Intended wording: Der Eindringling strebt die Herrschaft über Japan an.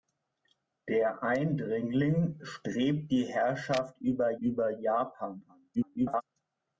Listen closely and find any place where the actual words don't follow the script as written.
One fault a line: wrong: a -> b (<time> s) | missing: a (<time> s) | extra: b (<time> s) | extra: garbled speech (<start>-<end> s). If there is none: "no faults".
extra: über (4.4 s)
extra: garbled speech (5.7-6.2 s)